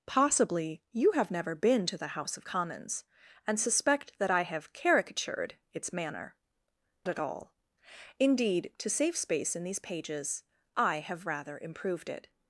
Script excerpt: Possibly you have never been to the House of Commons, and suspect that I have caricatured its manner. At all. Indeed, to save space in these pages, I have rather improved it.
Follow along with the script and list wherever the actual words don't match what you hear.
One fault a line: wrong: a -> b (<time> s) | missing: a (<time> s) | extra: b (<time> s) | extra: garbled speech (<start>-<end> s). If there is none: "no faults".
no faults